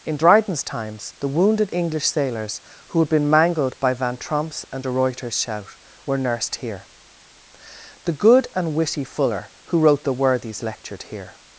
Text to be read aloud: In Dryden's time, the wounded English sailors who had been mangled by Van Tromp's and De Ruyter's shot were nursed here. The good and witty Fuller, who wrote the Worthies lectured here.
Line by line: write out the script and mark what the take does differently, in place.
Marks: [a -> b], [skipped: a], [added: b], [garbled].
In Dryden's [time, -> times] the wounded English sailors who had been mangled by Van Tromp's and De Ruyter's [shot -> shout] were nursed here. The good and witty Fuller, who wrote the Worthies lectured here.